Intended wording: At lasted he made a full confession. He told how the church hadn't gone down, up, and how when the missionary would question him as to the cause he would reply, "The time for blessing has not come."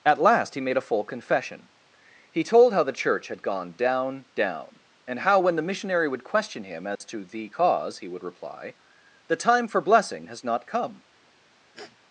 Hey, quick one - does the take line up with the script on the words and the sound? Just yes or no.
no